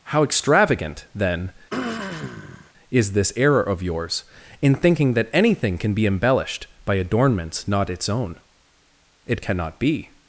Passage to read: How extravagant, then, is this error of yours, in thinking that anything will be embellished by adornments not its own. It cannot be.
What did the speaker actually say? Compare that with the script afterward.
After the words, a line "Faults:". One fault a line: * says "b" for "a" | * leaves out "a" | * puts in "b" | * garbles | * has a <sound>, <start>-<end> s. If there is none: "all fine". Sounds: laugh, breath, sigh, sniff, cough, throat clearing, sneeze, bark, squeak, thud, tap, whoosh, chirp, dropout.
How extravagant, then, is this error of yours, in thinking that anything can be embellished by adornments not its own. It cannot be.
Faults:
* has a throat clearing, 1.7-2.7 s
* says "can" for "will"